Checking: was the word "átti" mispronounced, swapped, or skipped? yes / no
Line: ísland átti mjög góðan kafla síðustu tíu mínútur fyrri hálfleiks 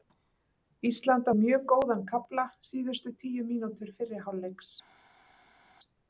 yes